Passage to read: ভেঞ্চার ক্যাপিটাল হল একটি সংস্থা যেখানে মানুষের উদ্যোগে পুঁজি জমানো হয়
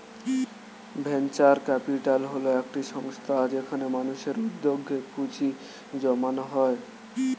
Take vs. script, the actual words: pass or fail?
pass